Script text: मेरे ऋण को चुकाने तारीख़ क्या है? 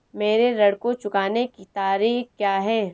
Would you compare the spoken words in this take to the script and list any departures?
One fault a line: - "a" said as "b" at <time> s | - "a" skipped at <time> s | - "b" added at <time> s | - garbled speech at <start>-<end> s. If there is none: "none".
- "की" added at 1.5 s